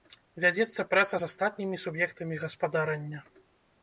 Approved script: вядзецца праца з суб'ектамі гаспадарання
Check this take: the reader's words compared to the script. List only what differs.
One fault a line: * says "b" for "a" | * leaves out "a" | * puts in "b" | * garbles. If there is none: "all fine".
* puts in "астатнімі"